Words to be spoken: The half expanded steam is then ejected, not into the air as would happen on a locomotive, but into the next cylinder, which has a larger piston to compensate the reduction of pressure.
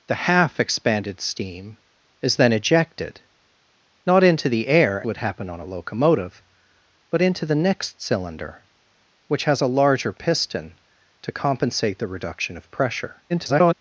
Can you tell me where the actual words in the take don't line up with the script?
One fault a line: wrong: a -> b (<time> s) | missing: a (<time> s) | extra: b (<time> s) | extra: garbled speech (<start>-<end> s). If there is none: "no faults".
missing: as (5.0 s)
extra: garbled speech (13.3-13.7 s)